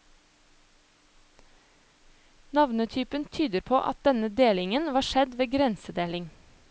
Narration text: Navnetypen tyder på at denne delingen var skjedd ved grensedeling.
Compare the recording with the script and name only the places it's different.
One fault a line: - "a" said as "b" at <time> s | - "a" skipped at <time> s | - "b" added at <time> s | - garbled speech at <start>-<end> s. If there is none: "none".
none